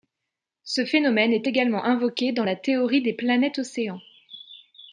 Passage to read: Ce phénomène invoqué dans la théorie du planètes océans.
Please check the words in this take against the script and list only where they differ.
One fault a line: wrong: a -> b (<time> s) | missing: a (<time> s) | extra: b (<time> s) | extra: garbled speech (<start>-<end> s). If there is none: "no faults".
extra: est également (1.3 s)
wrong: du -> des (3.0 s)